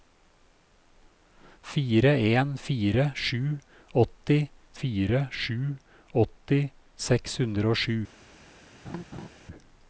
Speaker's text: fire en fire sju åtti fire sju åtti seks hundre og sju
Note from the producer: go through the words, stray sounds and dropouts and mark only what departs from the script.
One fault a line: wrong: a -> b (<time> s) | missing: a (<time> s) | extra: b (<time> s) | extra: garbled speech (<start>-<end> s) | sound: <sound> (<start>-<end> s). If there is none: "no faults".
sound: laugh (8.8-9.3 s)